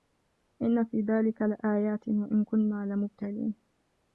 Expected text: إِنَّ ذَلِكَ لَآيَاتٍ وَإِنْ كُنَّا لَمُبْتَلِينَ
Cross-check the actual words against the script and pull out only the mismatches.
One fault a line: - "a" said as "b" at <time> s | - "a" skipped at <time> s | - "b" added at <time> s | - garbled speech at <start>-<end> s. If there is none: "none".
- "فِي" added at 0.8 s